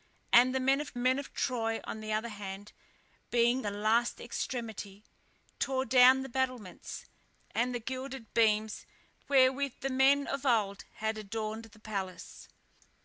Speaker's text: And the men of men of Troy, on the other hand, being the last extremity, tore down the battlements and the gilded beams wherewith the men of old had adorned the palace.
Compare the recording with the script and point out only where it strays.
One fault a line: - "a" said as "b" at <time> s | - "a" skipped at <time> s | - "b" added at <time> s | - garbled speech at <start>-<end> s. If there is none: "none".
none